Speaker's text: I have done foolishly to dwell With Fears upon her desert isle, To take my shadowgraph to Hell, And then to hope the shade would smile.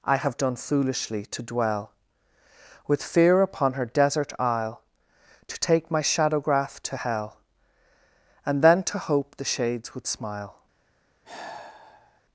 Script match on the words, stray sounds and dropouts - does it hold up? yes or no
no